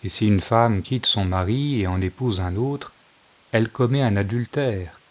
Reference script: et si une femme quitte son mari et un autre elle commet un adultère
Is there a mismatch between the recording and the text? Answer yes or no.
yes